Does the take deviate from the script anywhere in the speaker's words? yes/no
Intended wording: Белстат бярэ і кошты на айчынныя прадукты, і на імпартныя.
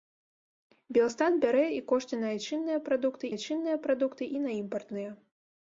yes